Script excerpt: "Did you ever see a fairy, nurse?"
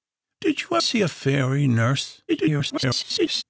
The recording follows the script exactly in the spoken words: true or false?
false